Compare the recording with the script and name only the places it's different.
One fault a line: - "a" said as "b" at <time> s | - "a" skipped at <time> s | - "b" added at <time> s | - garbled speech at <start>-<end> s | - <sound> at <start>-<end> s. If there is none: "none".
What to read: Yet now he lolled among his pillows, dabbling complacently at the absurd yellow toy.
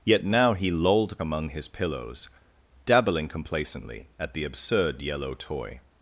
none